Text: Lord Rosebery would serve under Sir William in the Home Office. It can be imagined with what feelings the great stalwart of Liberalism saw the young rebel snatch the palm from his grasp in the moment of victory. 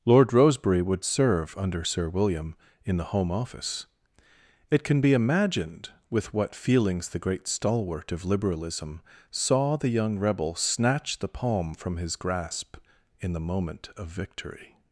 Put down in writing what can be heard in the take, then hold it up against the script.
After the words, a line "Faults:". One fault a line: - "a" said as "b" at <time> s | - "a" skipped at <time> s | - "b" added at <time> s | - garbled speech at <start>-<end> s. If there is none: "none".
Lord Rosebery would serve under Sir William in the Home Office. It can be imagined with what feelings the great stalwart of Liberalism saw the young rebel snatch the palm from his grasp in the moment of victory.
Faults:
none